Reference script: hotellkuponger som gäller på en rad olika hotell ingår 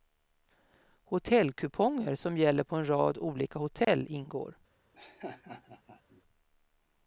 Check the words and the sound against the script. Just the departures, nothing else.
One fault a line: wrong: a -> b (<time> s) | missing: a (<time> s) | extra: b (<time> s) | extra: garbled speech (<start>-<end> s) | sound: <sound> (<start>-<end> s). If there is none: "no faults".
sound: dropout (3.8-3.9 s)
sound: laugh (4.9-6.2 s)